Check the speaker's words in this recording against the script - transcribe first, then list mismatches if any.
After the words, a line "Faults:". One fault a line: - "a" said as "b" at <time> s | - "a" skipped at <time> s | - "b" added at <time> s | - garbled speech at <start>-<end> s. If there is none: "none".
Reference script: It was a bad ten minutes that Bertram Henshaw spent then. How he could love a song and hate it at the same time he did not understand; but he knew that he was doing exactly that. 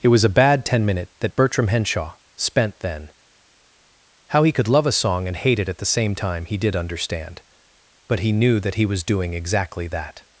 It was a bad ten minute that Bertram Henshaw spent then. How he could love a song and hate it at the same time he did understand; but he knew that he was doing exactly that.
Faults:
- "minutes" said as "minute" at 0.8 s
- "not" skipped at 6.8 s